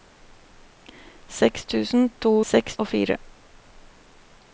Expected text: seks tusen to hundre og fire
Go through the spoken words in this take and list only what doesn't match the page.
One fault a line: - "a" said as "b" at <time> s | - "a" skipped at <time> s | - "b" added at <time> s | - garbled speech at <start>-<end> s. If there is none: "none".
- "hundre" said as "seks" at 2.5 s